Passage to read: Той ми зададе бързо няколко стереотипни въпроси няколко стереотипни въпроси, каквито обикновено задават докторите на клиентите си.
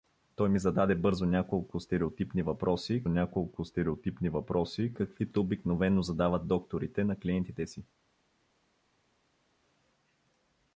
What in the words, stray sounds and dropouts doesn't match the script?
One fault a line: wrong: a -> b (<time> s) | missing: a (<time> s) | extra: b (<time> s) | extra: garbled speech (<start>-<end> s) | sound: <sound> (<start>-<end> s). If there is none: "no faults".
no faults